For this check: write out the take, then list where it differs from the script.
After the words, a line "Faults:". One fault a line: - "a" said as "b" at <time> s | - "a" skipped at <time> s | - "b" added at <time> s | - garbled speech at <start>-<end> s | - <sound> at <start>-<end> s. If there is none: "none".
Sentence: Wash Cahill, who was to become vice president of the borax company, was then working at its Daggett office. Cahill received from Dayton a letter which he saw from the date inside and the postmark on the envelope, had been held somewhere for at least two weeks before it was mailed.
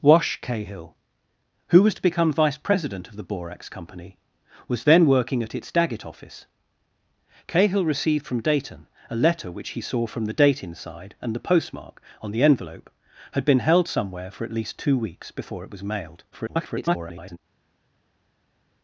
Wash Cahill, who was to become vice president of the borax company, was then working at its Daggett office. Cahill received from Dayton a letter which he saw from the date inside and the postmark on the envelope, had been held somewhere for at least two weeks before it was mailed. [garbled]
Faults:
- garbled speech at 16.3-17.4 s